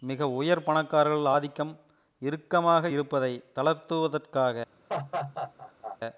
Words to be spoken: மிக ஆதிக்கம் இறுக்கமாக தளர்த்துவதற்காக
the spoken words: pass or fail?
fail